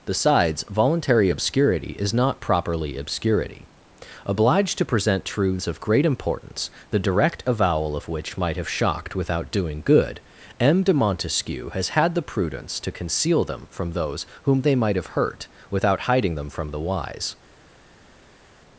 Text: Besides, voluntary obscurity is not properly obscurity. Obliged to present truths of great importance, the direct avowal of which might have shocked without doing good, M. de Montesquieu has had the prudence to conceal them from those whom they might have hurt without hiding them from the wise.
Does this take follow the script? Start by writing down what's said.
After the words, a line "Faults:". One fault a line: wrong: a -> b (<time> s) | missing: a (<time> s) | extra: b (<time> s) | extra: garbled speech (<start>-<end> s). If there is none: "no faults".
Besides, voluntary obscurity is not properly obscurity. Obliged to present truths of great importance, the direct avowal of which might have shocked without doing good, M. de Montesquieu has had the prudence to conceal them from those whom they might have hurt without hiding them from the wise.
Faults:
no faults